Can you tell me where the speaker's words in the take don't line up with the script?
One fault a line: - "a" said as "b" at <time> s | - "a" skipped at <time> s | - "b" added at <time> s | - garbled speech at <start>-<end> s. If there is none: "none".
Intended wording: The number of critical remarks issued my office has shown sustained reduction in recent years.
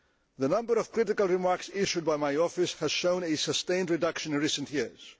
- "by" added at 2.0 s
- "a" added at 3.2 s